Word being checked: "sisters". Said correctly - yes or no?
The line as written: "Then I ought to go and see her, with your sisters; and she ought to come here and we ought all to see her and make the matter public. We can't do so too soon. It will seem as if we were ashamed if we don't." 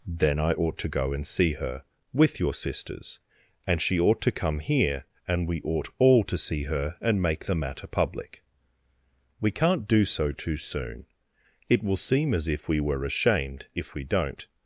yes